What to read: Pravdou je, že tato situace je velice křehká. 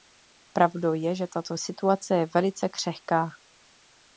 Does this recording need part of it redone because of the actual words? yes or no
no